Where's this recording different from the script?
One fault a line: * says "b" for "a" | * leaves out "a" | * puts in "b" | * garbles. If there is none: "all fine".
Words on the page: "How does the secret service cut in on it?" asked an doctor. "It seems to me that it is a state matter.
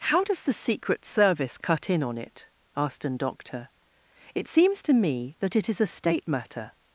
all fine